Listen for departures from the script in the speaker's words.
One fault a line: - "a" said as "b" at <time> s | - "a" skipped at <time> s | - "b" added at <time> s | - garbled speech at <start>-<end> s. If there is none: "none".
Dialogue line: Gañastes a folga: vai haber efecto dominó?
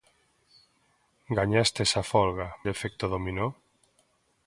- "vai haber" skipped at 2.5 s